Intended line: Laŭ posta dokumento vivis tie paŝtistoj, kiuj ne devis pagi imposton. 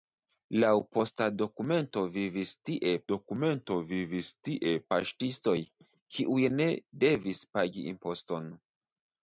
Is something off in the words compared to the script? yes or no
yes